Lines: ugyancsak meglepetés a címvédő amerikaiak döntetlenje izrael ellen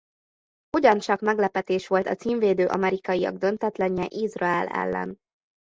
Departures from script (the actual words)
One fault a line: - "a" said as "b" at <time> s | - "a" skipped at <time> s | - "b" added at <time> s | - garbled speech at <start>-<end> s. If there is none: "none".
- "volt" added at 1.9 s